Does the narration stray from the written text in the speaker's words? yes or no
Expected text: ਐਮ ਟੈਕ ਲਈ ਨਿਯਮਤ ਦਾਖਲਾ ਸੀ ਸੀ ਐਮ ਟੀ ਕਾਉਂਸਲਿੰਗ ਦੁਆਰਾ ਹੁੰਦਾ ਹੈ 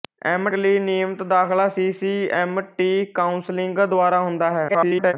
yes